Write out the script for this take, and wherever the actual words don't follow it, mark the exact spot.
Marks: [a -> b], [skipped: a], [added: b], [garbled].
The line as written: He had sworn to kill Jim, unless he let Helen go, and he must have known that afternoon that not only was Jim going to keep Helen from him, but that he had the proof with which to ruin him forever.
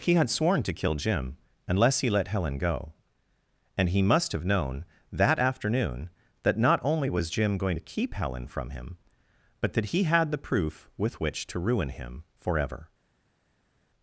He had sworn to kill Jim, unless he let Helen go, and he must have known that afternoon that not only was Jim going to keep Helen from him, but that he had the proof with which to ruin him forever.